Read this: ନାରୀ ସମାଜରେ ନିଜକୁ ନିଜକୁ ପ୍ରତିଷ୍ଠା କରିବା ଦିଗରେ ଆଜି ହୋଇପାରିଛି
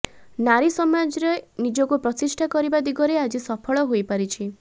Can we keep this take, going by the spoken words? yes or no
no